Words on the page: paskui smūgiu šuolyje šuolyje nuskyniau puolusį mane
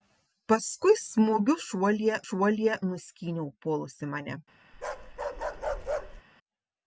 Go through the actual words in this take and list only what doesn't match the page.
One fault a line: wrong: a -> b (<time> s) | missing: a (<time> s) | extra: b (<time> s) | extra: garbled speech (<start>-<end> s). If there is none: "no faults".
no faults